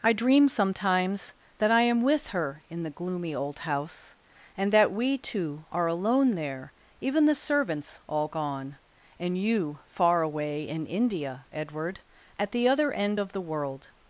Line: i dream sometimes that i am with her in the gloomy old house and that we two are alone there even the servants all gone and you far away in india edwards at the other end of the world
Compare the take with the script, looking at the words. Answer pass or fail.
fail